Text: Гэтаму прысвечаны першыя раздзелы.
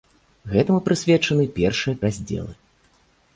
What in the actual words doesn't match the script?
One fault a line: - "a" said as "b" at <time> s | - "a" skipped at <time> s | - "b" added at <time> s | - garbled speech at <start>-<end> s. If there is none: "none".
none